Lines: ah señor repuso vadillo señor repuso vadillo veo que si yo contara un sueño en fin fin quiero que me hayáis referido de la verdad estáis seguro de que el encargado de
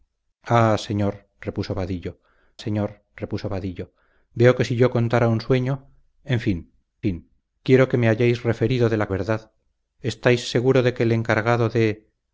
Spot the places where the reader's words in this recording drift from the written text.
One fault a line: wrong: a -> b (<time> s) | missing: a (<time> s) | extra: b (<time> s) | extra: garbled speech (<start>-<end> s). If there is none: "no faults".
no faults